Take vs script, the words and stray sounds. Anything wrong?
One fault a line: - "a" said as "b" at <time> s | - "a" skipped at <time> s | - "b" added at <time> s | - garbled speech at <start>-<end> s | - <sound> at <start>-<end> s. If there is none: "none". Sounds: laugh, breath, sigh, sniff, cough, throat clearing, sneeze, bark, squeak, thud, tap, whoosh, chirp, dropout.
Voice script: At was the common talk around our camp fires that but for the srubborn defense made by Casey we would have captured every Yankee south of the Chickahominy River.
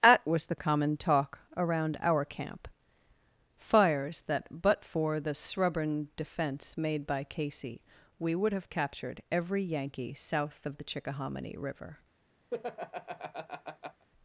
- laugh at 12.5-14.1 s